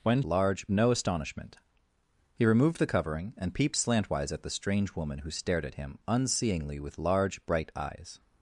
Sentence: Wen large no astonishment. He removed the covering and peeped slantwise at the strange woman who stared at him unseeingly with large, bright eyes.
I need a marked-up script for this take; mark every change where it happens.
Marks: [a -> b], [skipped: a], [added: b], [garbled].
Wen large no astonishment. He removed the covering and peeped slantwise at the strange woman who stared at him unseeingly with large, bright eyes.